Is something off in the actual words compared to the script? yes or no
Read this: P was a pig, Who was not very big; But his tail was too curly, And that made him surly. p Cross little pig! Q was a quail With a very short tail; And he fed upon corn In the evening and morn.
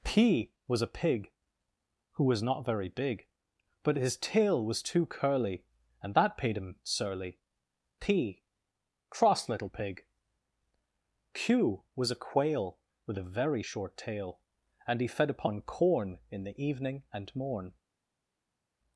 yes